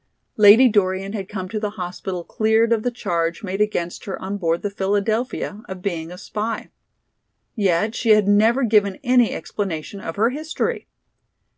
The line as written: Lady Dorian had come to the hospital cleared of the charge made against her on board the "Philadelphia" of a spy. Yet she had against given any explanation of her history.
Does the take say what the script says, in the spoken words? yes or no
no